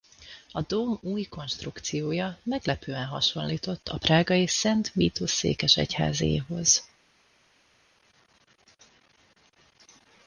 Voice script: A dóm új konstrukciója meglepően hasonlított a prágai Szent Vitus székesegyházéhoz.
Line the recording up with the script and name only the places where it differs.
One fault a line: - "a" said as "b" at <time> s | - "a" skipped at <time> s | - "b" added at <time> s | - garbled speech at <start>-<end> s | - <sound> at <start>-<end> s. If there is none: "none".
none